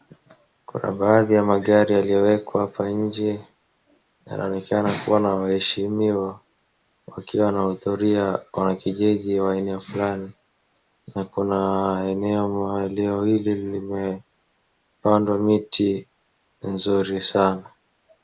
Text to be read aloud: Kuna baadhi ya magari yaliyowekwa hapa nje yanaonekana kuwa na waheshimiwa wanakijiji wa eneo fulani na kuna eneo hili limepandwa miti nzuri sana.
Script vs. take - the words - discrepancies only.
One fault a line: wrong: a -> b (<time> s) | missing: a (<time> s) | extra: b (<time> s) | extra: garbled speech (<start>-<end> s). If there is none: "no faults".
extra: wakiwa wanahudhuria (7.1 s)